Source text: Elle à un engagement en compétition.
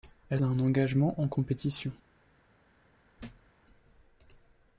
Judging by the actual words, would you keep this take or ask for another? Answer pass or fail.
pass